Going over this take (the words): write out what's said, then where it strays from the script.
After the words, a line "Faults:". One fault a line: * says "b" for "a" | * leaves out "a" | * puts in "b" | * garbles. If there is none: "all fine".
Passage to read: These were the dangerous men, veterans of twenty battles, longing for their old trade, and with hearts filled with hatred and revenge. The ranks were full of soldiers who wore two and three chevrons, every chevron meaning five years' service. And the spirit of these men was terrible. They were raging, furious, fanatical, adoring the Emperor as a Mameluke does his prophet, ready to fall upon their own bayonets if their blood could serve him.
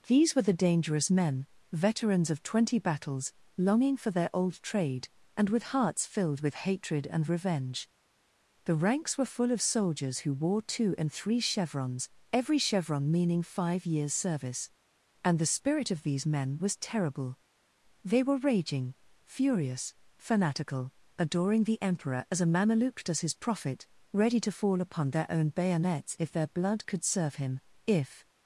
These were the dangerous men, veterans of twenty battles, longing for their old trade, and with hearts filled with hatred and revenge. The ranks were full of soldiers who wore two and three chevrons, every chevron meaning five years' service. And the spirit of these men was terrible. They were raging, furious, fanatical, adoring the Emperor as a Mameluke does his prophet, ready to fall upon their own bayonets if their blood could serve him. If
Faults:
* puts in "If"